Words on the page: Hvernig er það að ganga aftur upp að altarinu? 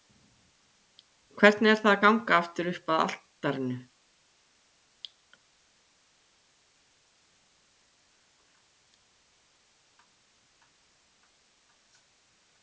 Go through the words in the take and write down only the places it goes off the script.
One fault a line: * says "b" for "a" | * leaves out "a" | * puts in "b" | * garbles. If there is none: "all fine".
all fine